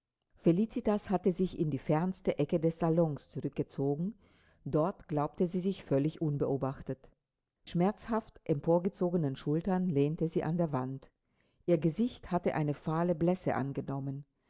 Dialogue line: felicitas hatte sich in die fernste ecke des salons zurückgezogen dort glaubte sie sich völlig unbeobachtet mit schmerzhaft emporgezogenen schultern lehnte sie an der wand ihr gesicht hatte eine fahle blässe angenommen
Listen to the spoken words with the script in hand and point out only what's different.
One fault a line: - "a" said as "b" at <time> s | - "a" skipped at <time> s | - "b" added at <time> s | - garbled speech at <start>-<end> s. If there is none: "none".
- "mit" skipped at 7.0 s